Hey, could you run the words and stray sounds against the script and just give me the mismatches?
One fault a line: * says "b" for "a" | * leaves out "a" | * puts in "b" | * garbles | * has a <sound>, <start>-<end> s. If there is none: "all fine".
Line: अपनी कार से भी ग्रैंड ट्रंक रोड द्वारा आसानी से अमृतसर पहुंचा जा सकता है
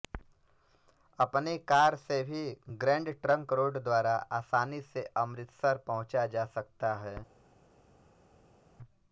all fine